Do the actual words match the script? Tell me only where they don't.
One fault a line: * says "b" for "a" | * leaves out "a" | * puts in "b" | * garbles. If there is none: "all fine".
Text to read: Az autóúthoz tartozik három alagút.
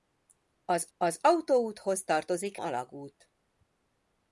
* puts in "az"
* leaves out "három"